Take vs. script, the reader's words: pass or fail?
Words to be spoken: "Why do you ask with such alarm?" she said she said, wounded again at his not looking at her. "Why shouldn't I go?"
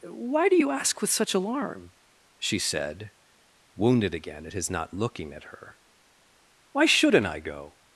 fail